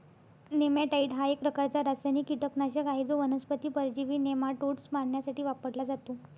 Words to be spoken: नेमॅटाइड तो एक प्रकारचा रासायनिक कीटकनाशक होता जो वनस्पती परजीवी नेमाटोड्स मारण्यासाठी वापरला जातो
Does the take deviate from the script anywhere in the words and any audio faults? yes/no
yes